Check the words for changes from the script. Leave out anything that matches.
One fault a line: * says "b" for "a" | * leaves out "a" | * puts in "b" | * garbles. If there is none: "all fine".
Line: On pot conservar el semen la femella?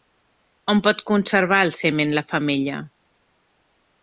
all fine